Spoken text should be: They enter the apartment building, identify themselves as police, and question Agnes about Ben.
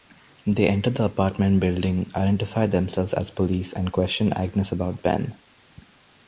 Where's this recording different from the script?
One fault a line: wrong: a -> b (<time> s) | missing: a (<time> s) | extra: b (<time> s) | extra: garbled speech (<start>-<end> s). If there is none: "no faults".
no faults